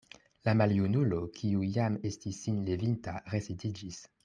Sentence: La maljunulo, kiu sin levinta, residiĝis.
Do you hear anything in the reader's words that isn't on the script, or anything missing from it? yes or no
yes